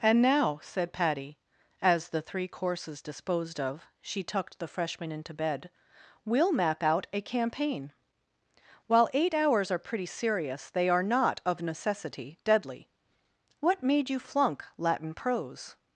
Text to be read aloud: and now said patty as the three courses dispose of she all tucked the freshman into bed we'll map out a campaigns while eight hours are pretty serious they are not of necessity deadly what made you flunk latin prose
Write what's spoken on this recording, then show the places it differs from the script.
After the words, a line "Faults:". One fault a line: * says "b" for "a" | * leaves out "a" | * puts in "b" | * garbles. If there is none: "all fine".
and now said patty as the three courses disposed of she tucked the freshman into bed we'll map out a campaign while eight hours are pretty serious they are not of necessity deadly what made you flunk latin prose
Faults:
* says "disposed" for "dispose"
* leaves out "all"
* says "campaign" for "campaigns"